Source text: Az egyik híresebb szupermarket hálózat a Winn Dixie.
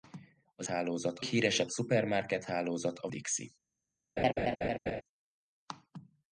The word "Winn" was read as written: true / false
false